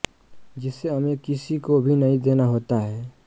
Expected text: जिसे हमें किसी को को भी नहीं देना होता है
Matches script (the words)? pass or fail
fail